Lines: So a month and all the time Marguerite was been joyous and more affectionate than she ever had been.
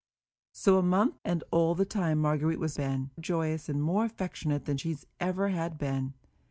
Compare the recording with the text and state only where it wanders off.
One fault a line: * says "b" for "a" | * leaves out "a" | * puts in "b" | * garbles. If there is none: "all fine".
all fine